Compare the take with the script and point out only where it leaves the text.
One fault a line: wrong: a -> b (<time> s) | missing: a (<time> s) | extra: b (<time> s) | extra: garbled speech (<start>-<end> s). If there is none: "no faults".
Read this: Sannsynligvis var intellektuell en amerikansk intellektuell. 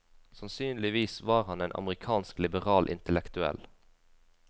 wrong: intellektuell -> han (1.4 s)
extra: liberal (2.4 s)